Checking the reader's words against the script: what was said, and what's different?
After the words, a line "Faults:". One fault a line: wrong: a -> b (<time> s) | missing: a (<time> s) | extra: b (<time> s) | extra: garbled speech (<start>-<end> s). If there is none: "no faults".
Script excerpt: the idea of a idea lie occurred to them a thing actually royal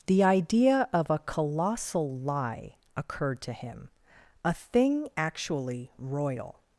the idea of a colossal lie occurred to him a thing actually royal
Faults:
wrong: idea -> colossal (1.2 s)
wrong: them -> him (3.5 s)